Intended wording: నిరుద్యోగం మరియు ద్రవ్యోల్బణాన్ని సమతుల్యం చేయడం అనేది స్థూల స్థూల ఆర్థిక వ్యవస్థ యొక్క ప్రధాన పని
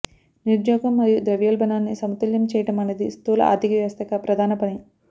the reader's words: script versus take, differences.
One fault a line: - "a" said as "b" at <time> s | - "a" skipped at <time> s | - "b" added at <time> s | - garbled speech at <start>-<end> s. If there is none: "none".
- "స్థూల" skipped at 3.4 s